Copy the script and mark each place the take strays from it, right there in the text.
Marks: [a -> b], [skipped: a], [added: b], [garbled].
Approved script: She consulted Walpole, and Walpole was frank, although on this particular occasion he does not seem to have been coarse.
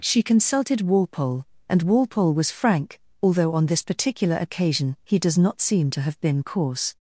She consulted Walpole, and Walpole was frank, although on this particular occasion he does not seem to have been coarse.